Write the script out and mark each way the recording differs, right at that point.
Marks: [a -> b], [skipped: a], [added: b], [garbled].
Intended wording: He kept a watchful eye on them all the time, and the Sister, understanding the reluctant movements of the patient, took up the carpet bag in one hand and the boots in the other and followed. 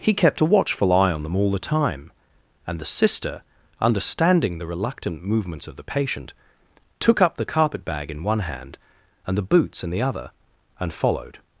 He kept a watchful eye on them all the time, and the Sister, understanding the reluctant movements of the patient, took up the carpet bag in one hand and the boots in the other and followed.